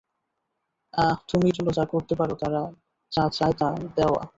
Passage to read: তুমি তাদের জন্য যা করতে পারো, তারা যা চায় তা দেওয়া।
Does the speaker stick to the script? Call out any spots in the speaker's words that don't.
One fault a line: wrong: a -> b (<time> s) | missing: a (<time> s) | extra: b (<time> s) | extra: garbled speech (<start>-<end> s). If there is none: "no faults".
missing: তাদের (1.5 s)